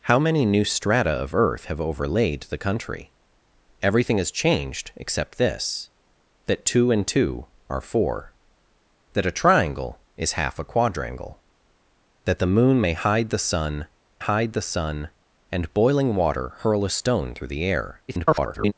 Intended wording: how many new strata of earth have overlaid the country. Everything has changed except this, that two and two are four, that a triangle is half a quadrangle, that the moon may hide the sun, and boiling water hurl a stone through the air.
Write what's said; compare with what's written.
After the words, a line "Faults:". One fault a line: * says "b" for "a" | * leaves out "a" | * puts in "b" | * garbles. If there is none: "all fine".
how many new strata of earth have overlaid the country. Everything has changed except this, that two and two are four, that a triangle is half a quadrangle, that the moon may hide the sun hide the sun, and boiling water hurl a stone through the air. [garbled]
Faults:
* puts in "hide the sun"
* garbles